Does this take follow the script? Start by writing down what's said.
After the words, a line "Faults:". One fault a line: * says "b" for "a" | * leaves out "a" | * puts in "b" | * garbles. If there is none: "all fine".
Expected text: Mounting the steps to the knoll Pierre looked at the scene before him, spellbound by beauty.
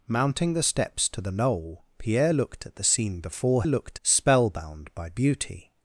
Mounting the steps to the knoll Pierre looked at the scene before looked, spellbound by beauty.
Faults:
* says "looked" for "him"